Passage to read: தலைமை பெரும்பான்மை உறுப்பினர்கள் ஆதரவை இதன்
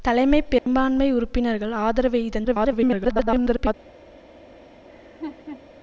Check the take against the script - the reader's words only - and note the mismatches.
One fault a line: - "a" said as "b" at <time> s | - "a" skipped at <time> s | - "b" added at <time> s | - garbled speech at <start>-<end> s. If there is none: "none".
- garbled speech at 2.4-3.7 s